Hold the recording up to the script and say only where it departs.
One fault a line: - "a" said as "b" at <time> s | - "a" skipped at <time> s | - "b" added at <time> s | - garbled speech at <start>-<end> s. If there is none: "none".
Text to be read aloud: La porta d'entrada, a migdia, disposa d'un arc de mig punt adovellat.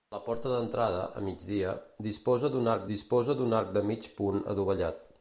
- "disposa d'un arc" added at 2.9 s